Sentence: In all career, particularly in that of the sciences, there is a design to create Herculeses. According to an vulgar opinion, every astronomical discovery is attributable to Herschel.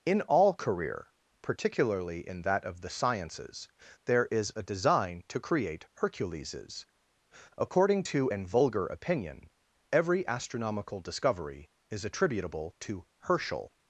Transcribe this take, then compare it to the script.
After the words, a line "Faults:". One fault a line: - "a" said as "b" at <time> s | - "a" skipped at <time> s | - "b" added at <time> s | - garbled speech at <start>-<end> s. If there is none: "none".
In all career, particularly in that of the sciences, there is a design to create Herculeses. According to an vulgar opinion, every astronomical discovery is attributable to Herschel.
Faults:
none